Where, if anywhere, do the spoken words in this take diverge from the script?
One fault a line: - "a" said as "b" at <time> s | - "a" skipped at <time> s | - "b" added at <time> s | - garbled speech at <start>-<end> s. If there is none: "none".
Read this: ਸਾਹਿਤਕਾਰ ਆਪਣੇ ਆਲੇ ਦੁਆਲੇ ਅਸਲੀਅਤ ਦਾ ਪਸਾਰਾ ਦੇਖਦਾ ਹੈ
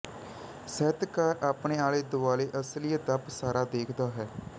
none